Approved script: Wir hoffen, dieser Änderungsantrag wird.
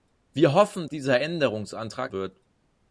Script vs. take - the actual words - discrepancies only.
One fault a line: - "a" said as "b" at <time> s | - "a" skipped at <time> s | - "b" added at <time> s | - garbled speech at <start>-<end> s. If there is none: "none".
none